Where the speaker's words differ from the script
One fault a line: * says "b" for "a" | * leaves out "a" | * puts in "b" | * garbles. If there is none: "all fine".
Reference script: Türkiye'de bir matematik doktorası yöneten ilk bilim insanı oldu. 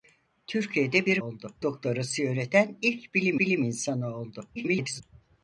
* says "oldu" for "matematik"
* puts in "bilim"
* garbles